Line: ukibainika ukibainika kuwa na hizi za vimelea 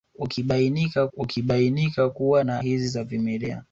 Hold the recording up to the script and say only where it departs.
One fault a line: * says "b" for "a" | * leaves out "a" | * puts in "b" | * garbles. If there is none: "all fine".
all fine